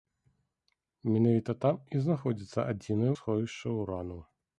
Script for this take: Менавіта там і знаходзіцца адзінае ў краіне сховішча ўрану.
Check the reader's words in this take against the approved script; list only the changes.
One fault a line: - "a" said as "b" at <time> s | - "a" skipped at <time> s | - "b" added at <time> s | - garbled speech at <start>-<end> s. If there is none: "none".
- "ў краіне" skipped at 3.1 s